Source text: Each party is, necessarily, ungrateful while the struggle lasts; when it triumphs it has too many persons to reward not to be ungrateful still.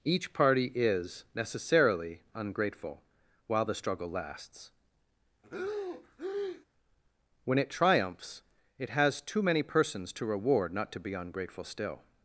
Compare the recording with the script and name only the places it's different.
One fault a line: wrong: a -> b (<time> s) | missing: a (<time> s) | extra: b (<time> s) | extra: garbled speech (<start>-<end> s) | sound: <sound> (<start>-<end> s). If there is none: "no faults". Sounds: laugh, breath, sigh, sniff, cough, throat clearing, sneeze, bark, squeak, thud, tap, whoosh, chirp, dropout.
sound: breath (5.4-6.7 s)